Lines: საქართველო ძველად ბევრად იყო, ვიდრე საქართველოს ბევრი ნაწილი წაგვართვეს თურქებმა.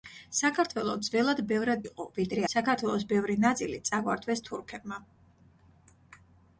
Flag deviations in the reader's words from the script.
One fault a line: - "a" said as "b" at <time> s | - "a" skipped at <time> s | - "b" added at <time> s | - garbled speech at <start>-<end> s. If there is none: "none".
none